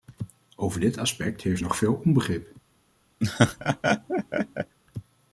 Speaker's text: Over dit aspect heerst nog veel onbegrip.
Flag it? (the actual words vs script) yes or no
no